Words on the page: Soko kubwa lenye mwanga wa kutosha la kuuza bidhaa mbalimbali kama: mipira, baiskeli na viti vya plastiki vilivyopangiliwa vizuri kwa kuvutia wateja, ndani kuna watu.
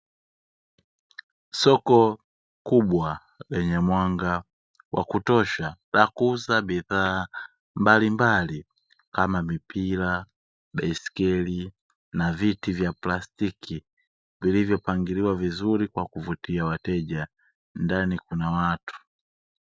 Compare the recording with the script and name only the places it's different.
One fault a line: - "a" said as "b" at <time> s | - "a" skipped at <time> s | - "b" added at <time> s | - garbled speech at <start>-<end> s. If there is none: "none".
none